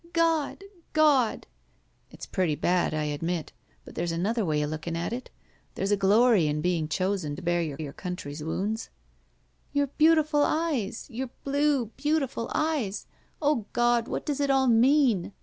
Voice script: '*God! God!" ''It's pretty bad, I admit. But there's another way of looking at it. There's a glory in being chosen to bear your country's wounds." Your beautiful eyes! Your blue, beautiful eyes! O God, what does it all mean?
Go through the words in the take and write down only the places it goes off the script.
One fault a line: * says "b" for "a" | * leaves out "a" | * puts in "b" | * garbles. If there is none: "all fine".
* puts in "your"